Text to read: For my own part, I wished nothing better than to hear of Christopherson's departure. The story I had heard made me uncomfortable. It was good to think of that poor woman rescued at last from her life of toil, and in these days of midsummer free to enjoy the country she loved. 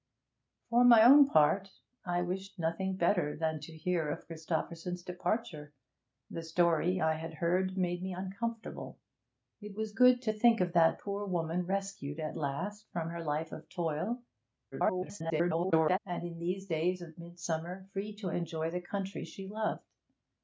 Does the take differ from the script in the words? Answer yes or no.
yes